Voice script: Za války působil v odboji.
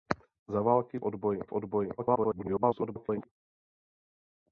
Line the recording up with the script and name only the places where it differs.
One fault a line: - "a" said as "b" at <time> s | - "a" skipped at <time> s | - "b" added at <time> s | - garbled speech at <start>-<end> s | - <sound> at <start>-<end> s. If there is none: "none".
- "působil" said as "odboji" at 1.0 s
- garbled speech at 2.0-3.3 s